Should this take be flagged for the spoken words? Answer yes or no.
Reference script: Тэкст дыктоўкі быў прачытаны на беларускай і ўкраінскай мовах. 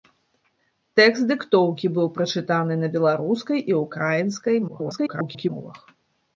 yes